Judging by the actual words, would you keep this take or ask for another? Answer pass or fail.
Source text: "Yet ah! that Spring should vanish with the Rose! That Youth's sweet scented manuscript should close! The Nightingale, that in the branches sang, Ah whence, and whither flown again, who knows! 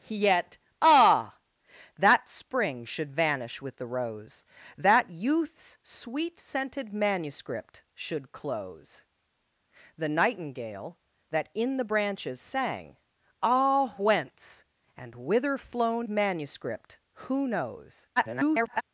fail